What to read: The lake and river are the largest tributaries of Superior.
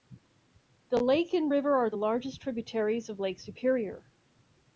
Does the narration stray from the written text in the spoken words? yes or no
yes